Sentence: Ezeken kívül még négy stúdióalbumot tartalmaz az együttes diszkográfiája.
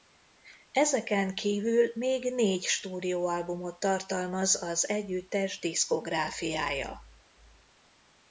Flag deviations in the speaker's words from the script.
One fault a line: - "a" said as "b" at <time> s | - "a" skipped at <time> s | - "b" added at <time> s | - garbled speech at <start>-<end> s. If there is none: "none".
none